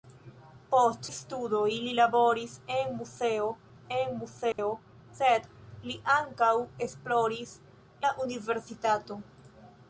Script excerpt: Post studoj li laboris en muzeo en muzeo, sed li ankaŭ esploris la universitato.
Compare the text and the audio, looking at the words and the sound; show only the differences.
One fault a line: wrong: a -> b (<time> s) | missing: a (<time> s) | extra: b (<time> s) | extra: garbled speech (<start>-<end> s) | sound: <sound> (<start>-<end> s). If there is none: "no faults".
sound: dropout (4.5-4.6 s)